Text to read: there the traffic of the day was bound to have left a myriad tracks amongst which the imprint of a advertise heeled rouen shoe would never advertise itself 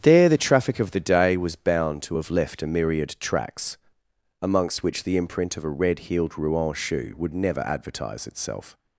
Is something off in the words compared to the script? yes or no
yes